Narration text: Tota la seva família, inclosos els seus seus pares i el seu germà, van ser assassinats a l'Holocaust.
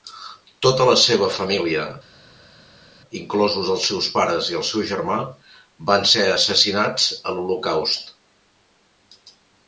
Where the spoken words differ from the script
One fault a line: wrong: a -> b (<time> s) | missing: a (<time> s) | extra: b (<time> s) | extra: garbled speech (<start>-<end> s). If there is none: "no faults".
missing: seus (4.1 s)